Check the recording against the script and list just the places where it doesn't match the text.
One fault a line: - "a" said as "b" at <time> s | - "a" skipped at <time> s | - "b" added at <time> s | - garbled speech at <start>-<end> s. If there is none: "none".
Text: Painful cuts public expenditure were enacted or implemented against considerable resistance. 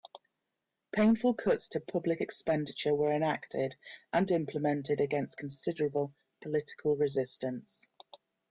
- "to" added at 1.7 s
- "or" said as "and" at 4.1 s
- "political" added at 6.4 s